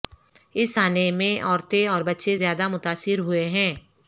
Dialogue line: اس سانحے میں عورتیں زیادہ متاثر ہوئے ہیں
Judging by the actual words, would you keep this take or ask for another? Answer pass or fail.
fail